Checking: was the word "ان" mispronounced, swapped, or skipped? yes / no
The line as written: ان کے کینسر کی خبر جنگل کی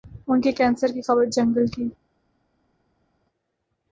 no